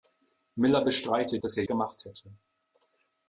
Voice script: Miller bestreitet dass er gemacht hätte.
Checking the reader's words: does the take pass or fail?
pass